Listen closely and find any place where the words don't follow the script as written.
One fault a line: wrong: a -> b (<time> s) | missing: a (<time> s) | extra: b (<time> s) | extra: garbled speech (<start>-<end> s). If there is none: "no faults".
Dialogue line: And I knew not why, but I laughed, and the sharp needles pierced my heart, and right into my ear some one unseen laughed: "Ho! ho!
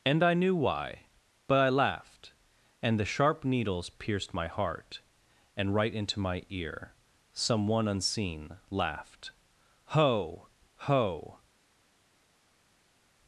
missing: not (0.6 s)